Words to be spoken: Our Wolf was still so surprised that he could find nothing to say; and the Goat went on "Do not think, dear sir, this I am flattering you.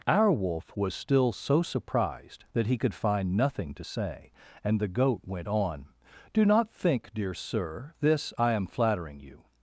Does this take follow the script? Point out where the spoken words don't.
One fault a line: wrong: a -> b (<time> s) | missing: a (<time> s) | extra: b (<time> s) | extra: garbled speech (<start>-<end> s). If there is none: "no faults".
no faults